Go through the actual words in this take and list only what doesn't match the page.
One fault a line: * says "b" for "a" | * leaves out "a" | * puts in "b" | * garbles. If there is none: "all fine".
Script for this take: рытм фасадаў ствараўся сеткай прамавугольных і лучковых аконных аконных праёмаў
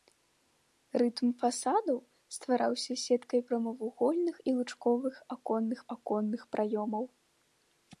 all fine